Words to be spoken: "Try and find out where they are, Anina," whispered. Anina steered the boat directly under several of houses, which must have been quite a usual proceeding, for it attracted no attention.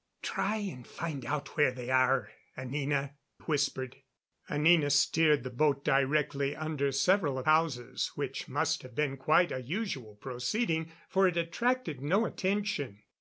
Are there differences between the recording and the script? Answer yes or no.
no